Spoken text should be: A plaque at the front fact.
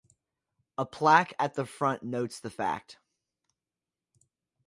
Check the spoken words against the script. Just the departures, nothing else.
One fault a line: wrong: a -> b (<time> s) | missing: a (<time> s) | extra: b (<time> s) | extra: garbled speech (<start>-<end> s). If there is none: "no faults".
extra: notes the (2.0 s)